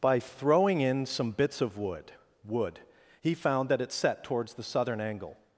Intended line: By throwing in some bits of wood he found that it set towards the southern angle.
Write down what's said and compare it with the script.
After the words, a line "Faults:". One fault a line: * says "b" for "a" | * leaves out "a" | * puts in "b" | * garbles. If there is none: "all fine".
By throwing in some bits of wood wood he found that it set towards the southern angle.
Faults:
* puts in "wood"